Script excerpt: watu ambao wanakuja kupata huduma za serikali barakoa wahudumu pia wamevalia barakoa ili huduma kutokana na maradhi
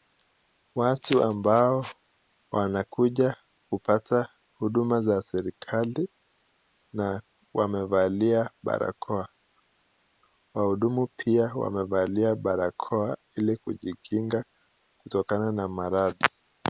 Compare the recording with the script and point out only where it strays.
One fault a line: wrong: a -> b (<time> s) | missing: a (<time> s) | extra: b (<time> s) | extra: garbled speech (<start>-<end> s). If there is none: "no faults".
extra: na wamevalia (6.9 s)
wrong: huduma -> kujikinga (13.6 s)